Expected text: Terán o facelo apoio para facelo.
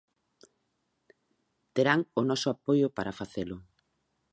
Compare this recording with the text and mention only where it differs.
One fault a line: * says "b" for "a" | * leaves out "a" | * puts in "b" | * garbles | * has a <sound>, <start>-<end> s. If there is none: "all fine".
* says "noso" for "facelo"